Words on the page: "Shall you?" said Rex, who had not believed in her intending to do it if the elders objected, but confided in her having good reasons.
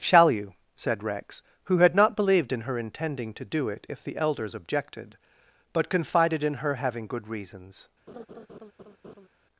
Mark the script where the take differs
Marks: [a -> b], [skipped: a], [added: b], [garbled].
"Shall you?" said Rex, who had not believed in her intending to do it if the elders objected, but confided in her having good reasons.